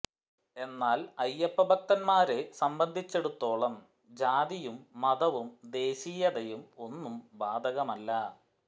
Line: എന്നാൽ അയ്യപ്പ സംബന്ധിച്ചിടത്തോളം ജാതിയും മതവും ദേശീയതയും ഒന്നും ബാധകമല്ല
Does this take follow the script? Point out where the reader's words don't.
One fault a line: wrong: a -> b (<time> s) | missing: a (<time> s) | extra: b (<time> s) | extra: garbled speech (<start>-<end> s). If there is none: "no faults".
extra: ഭക്തന്മാരെ (1.6 s)